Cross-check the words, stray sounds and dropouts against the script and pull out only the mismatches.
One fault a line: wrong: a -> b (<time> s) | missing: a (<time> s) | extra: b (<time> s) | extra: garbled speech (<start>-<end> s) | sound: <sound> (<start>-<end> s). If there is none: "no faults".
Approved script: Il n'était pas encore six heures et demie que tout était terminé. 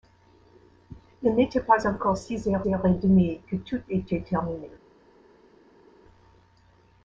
extra: heures (2.7 s)